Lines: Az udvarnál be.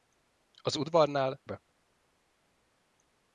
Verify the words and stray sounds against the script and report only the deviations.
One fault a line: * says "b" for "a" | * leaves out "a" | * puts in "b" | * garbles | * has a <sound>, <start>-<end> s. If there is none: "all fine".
all fine